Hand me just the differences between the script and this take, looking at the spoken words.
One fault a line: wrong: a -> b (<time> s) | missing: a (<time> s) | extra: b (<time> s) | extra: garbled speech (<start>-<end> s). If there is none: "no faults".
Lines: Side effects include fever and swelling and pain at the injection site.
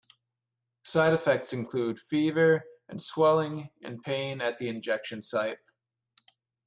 no faults